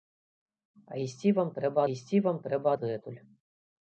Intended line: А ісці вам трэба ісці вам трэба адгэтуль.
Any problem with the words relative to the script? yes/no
no